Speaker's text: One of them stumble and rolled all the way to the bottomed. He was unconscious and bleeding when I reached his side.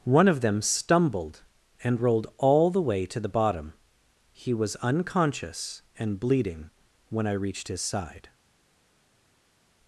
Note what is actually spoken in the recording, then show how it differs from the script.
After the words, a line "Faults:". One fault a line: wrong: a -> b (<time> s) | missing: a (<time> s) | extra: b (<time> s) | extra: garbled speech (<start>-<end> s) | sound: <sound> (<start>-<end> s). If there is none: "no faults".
One of them stumbled and rolled all the way to the bottom. He was unconscious and bleeding when I reached his side.
Faults:
wrong: stumble -> stumbled (0.6 s)
wrong: bottomed -> bottom (3.3 s)